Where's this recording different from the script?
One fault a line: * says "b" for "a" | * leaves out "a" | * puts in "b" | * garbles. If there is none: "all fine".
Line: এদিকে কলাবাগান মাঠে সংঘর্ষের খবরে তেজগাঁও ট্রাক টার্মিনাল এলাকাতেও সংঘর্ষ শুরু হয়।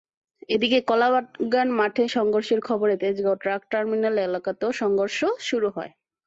all fine